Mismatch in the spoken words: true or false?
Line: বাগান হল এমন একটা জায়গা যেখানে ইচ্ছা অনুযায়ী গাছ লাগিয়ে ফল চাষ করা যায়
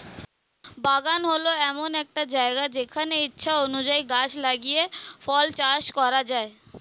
false